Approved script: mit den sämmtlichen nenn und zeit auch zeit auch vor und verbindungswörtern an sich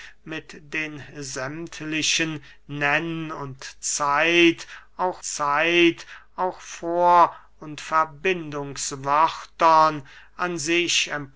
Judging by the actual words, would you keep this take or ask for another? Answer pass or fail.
pass